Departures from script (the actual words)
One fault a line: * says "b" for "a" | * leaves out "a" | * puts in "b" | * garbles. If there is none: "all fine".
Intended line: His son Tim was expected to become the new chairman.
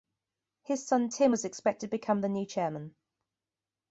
all fine